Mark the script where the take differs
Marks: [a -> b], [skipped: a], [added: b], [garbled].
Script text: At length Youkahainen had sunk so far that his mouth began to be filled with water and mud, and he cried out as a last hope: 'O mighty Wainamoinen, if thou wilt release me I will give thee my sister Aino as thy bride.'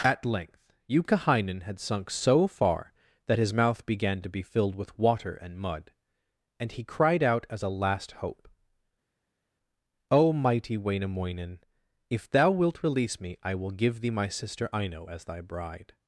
At length Youkahainen had sunk so far that his mouth began to be filled with water and mud, and he cried out as a last hope: 'O mighty Wainamoinen, if thou wilt release me I will give thee my sister Aino as thy bride.'